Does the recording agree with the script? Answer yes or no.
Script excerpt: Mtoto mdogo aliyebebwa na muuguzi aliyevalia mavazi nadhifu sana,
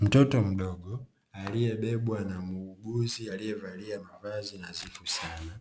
yes